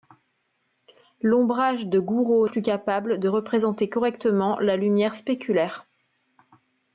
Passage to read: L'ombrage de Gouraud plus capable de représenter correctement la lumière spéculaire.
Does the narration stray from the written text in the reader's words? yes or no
no